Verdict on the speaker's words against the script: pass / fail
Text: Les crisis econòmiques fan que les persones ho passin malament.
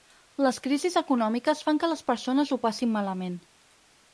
pass